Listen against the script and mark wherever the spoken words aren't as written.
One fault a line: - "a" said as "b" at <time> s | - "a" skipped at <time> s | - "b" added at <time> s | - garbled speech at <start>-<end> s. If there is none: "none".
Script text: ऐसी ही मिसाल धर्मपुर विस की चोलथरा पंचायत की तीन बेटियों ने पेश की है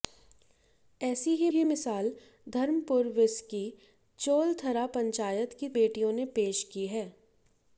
- "ही" added at 1.5 s
- "तीन" skipped at 5.7 s